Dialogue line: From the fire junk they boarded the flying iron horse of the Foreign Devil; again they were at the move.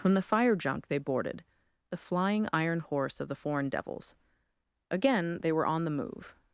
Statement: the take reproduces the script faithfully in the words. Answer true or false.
false